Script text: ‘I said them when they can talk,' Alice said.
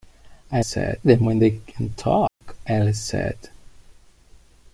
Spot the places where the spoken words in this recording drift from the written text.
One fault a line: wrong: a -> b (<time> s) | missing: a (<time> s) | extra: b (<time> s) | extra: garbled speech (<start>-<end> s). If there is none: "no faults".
no faults